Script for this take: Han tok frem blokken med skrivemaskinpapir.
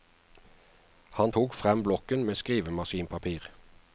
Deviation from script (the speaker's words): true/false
false